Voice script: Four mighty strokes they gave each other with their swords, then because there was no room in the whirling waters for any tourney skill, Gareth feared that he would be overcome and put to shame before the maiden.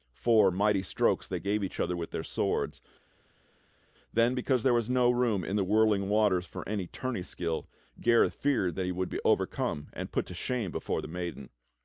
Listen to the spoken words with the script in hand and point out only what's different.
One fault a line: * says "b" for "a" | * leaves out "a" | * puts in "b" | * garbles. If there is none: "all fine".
all fine